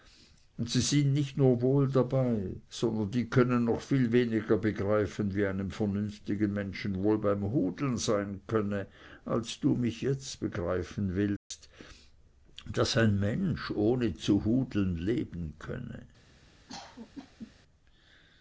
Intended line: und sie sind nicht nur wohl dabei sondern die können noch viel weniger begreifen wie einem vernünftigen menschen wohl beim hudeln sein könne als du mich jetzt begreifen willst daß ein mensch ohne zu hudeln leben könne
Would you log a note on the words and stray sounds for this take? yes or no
yes